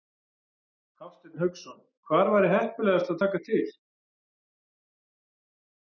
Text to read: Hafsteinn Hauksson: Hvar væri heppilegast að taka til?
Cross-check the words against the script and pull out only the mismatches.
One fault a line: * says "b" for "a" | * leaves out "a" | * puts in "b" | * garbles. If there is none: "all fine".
all fine